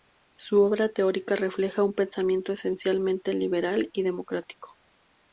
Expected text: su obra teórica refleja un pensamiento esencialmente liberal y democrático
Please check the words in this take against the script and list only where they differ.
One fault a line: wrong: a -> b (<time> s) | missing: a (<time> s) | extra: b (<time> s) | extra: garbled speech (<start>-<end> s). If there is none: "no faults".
no faults